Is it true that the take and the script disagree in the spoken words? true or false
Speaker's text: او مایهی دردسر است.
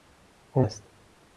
true